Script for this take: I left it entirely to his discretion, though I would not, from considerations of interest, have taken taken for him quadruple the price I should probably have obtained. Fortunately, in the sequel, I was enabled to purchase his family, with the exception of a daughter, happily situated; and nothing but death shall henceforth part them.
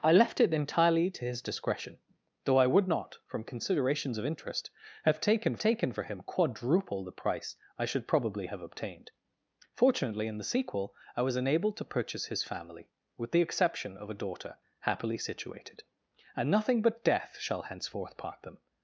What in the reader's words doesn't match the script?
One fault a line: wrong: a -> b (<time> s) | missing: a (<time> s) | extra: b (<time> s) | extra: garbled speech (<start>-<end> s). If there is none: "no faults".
no faults